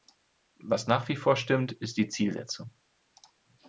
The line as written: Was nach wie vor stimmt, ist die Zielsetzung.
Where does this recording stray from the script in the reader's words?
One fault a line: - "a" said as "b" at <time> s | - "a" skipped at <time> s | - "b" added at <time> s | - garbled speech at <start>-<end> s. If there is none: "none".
none